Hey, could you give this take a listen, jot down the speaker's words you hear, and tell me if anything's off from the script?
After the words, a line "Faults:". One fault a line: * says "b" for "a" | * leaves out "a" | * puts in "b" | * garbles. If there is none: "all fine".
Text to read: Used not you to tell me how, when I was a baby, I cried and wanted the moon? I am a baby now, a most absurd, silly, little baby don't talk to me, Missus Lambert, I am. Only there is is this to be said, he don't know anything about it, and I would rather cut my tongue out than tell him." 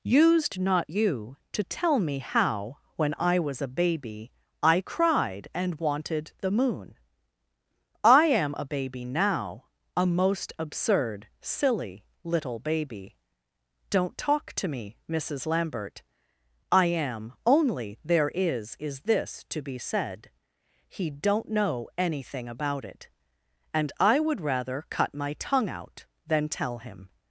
Used not you to tell me how, when I was a baby, I cried and wanted the moon? I am a baby now, a most absurd, silly, little baby don't talk to me, Missus Lambert, I am. Only there is is this to be said, he don't know anything about it, and I would rather cut my tongue out than tell him."
Faults:
all fine